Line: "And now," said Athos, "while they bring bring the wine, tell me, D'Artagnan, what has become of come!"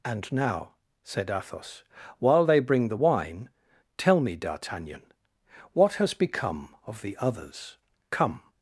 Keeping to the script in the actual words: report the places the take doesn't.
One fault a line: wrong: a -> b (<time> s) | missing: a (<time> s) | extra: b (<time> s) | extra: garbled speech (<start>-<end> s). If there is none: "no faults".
missing: bring (2.9 s)
extra: the others (7.0 s)